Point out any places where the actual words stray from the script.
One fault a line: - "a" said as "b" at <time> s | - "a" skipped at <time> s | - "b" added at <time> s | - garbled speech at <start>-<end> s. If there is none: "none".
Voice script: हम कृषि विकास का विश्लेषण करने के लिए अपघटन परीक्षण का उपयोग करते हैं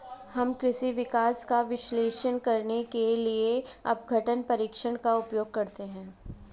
none